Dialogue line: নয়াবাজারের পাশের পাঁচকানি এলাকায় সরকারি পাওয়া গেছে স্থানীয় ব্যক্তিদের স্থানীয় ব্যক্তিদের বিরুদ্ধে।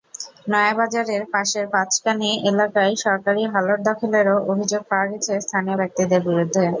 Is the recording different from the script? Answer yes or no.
yes